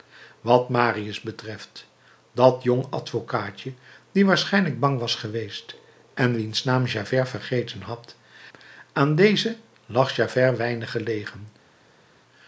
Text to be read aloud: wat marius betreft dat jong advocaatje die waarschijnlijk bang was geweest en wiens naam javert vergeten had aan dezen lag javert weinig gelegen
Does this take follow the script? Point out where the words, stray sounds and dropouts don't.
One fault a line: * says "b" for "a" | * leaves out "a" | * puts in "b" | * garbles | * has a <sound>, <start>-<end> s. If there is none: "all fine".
all fine